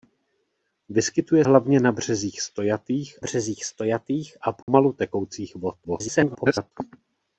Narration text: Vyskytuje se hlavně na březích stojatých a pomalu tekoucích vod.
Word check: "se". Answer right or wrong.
wrong